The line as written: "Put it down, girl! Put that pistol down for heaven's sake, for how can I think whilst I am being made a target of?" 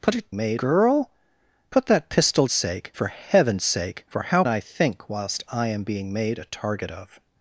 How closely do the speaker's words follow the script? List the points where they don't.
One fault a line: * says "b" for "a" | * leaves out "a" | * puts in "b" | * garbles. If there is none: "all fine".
* says "made" for "down"
* says "sake" for "down"
* leaves out "can"